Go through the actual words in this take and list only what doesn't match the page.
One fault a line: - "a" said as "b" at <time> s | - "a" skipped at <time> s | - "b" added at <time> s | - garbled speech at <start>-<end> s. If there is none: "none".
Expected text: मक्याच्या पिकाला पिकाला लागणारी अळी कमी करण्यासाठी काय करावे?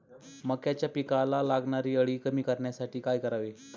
- "पिकाला" skipped at 1.4 s